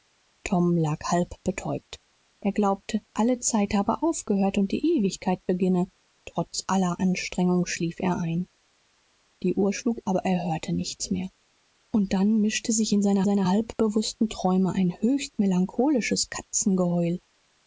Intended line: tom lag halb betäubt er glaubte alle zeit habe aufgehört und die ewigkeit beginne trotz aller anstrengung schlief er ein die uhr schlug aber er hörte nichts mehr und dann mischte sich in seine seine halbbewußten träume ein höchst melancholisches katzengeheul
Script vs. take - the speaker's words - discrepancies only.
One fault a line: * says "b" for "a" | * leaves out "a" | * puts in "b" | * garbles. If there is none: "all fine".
all fine